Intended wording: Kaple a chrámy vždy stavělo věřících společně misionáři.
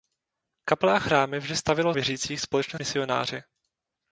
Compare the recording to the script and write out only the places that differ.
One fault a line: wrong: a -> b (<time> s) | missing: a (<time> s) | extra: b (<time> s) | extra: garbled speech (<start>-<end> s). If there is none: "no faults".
no faults